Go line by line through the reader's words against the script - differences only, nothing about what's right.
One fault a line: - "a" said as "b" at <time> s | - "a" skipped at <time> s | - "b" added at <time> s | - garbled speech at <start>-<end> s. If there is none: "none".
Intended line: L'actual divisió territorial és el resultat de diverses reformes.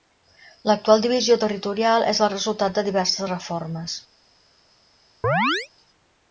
none